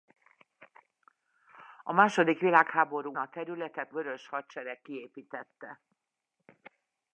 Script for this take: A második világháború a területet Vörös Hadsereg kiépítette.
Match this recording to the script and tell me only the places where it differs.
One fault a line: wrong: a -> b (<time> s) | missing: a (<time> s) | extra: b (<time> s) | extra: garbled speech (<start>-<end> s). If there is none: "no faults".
no faults